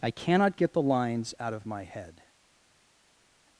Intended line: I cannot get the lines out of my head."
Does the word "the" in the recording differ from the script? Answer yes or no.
no